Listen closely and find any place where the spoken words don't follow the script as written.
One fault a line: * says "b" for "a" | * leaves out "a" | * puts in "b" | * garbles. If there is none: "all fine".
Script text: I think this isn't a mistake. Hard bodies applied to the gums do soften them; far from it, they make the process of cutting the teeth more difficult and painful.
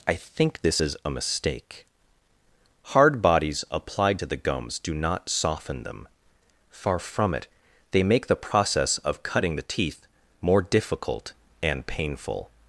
* says "is" for "isn't"
* puts in "not"